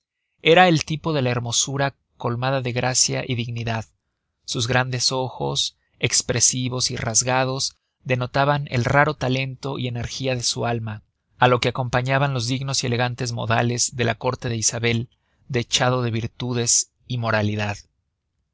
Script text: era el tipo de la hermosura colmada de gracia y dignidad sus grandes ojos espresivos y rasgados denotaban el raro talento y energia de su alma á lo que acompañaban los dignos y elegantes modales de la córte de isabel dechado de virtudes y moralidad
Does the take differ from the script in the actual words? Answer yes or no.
no